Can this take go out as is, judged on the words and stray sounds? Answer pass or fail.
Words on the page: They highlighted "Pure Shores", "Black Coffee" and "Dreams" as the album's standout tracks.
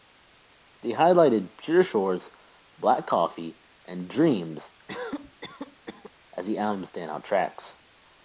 fail